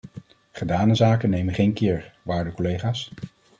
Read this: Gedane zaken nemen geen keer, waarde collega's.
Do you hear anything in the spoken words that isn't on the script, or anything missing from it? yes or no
no